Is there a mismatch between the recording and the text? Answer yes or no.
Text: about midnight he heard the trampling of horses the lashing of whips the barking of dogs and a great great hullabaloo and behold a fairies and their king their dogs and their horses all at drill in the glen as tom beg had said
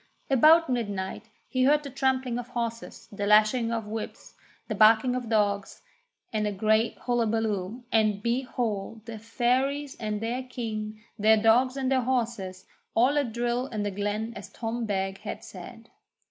yes